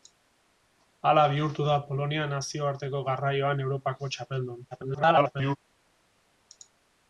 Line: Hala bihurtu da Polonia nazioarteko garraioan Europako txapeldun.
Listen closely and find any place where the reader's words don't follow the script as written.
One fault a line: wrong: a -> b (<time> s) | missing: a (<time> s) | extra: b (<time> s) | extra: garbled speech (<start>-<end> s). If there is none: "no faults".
extra: garbled speech (4.7-5.6 s)